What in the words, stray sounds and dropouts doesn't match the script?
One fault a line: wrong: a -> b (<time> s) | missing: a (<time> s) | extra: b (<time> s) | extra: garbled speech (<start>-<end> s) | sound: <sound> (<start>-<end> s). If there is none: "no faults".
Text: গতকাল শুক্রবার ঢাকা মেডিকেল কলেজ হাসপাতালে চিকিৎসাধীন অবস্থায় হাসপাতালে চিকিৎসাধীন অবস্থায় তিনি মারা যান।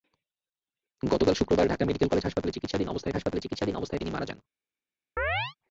sound: chirp (5.2-5.5 s)